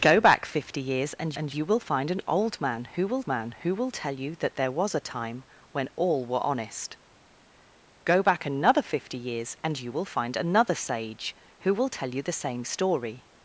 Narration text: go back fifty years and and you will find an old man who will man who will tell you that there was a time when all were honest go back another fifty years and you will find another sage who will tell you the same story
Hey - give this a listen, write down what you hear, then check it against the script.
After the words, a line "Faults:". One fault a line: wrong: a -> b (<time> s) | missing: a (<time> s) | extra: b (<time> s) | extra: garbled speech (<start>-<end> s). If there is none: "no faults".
go back fifty years and and you will find an old man who will man who will tell you that there was a time when all were honest go back another fifty years and you will find another sage who will tell you the same story
Faults:
no faults